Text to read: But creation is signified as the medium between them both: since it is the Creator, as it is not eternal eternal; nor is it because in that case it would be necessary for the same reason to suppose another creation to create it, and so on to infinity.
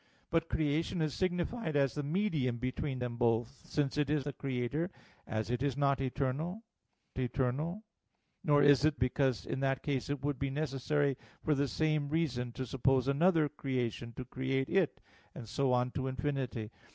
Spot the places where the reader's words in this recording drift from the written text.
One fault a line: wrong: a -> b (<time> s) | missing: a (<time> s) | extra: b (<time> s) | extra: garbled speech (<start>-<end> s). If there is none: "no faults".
no faults